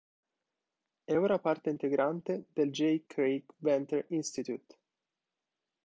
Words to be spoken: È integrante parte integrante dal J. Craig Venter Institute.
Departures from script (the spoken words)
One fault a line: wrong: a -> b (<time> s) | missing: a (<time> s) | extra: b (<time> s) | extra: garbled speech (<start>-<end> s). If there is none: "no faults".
wrong: integrante -> ora (1.1 s)
wrong: dal -> del (2.5 s)